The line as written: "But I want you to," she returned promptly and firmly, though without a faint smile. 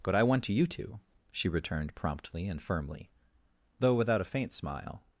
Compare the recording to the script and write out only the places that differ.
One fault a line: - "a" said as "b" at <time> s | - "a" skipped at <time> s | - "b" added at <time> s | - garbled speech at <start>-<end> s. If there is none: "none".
none